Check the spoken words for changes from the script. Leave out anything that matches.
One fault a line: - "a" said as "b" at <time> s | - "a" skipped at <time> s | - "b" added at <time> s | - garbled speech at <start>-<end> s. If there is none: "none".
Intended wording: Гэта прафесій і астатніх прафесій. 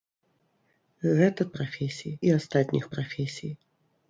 none